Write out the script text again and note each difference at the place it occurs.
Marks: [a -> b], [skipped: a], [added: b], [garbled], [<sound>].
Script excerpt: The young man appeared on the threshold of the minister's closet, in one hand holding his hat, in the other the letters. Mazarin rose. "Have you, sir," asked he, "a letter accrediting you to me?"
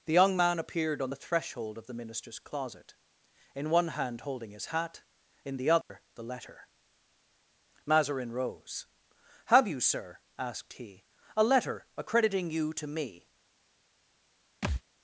The young man appeared on the threshold of the minister's closet, in one hand holding his hat, in the other [dropout] the [letters. -> letter] Mazarin rose. "Have you, sir," asked he, "a letter accrediting you to me?" [thud]